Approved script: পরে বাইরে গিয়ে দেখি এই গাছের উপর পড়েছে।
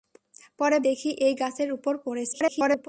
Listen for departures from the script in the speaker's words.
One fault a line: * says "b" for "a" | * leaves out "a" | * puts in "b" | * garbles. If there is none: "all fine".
* leaves out "বাইরে গিয়ে"
* garbles